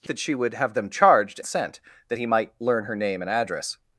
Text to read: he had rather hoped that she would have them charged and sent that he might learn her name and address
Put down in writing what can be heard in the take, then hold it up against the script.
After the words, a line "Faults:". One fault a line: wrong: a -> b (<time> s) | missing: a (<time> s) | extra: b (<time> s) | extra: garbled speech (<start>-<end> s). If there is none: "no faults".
he that she would have them charged sent that he might learn her name and address
Faults:
missing: had rather hoped (0.1 s)
missing: and (1.4 s)